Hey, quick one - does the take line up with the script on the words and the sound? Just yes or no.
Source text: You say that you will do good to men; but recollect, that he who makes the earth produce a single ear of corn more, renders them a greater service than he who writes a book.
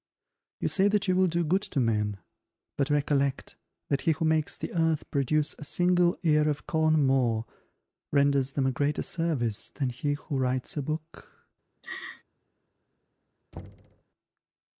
no